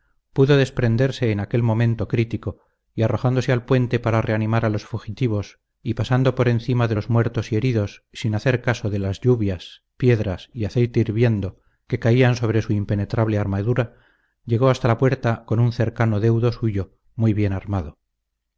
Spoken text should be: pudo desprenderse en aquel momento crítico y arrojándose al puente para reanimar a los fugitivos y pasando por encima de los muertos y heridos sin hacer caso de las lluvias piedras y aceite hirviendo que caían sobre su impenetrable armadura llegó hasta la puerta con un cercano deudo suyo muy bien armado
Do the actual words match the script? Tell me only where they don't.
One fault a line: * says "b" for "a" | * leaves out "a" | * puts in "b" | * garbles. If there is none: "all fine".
all fine